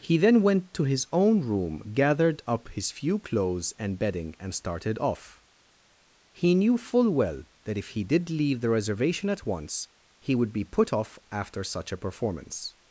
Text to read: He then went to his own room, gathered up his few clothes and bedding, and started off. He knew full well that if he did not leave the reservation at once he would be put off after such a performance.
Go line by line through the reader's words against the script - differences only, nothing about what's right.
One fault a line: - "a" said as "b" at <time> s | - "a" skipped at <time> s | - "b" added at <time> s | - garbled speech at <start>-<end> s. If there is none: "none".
- "not" skipped at 8.3 s